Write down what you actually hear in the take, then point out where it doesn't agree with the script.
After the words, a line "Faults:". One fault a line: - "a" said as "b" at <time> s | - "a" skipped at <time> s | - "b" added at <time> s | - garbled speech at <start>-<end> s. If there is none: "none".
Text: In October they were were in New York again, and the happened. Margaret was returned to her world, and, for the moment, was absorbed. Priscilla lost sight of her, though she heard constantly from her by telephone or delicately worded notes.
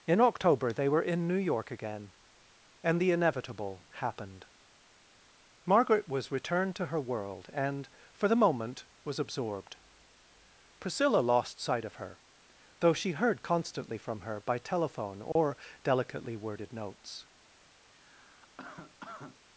In October they were in New York again, and the inevitable happened. Margaret was returned to her world, and, for the moment, was absorbed. Priscilla lost sight of her, though she heard constantly from her by telephone or delicately worded notes.
Faults:
- "were" skipped at 1.0 s
- "inevitable" added at 3.1 s